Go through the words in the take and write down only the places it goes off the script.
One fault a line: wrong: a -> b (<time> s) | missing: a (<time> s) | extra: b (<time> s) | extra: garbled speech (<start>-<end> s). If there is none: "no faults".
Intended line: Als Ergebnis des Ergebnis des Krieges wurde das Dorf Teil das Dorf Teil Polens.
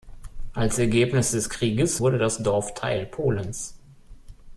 missing: Ergebnis des (1.5 s)
missing: das Dorf Teil (3.1 s)